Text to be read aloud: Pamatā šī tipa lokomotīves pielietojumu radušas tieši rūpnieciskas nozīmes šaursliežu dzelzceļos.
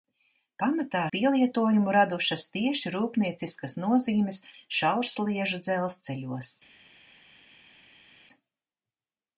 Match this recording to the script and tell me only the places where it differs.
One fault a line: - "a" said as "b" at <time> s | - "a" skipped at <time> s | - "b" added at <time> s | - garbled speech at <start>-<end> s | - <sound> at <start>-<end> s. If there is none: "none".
- "šī tipa lokomotīves" skipped at 1.0 s